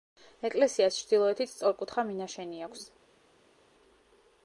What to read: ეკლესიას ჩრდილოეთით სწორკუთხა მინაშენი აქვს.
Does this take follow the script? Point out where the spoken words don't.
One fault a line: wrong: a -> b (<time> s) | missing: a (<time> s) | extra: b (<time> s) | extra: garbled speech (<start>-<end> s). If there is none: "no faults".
no faults